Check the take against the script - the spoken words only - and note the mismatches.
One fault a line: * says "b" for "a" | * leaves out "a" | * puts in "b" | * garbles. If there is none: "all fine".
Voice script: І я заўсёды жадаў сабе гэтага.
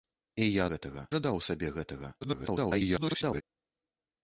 * says "гэтага" for "заўсёды"
* garbles